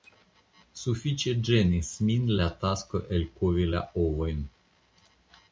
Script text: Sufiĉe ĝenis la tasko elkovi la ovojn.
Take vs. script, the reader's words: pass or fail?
fail